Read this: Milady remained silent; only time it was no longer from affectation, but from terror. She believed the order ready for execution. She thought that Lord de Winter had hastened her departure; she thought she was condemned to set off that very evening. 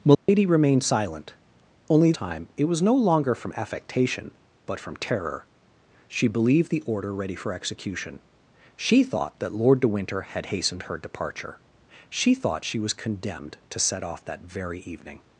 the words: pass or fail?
pass